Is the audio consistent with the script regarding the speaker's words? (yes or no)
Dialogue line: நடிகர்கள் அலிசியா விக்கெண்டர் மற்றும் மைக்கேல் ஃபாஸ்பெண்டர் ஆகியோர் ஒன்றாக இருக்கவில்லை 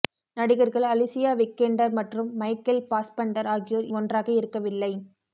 yes